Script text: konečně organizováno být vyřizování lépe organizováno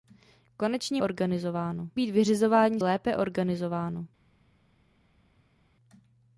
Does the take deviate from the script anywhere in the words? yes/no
no